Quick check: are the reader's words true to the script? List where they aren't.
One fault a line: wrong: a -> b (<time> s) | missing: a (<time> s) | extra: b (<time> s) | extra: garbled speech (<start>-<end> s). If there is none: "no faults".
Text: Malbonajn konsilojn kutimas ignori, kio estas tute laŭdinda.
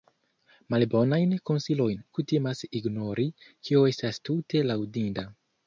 no faults